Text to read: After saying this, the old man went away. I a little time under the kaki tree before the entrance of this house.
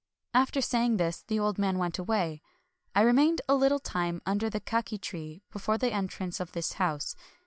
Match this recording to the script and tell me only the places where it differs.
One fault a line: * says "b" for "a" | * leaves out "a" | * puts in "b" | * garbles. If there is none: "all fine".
* puts in "remained"